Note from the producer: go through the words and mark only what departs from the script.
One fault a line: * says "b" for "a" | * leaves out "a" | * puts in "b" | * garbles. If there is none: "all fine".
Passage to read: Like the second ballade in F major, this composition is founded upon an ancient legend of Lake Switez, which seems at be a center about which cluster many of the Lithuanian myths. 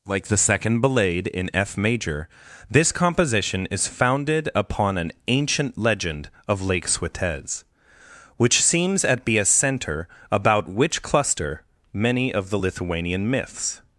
all fine